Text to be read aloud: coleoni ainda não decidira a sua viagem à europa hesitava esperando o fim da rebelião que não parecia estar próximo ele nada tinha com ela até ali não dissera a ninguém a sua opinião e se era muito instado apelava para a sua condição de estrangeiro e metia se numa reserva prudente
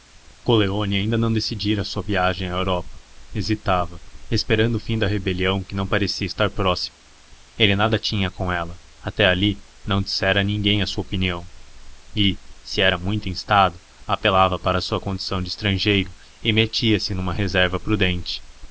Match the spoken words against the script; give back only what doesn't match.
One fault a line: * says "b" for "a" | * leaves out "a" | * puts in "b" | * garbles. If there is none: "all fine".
all fine